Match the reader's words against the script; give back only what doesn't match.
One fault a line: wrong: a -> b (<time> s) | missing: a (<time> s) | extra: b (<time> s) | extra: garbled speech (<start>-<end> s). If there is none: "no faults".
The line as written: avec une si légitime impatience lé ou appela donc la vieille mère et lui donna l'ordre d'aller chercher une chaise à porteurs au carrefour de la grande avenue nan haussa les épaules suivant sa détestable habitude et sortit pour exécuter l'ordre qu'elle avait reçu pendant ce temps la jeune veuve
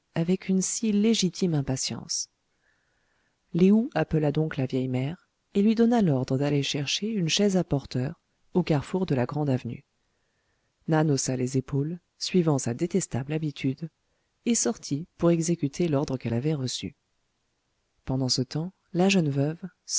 no faults